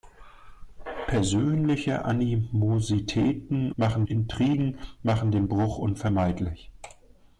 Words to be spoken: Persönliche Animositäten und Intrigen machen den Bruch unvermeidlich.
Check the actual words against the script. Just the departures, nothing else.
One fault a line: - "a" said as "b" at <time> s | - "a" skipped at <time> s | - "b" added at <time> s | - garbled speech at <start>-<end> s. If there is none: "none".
- "und" said as "machen" at 3.8 s